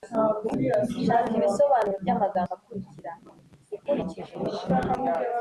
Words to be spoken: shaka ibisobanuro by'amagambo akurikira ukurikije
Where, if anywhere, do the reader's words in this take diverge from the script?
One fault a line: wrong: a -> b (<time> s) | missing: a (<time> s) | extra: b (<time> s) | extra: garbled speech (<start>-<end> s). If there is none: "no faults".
no faults